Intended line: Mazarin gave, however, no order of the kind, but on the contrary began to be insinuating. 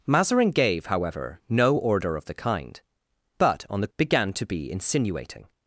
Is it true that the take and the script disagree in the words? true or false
true